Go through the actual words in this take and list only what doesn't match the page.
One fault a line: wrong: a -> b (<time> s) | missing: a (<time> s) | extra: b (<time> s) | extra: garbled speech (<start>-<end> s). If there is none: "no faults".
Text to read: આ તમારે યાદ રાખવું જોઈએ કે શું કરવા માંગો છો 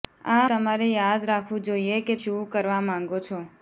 no faults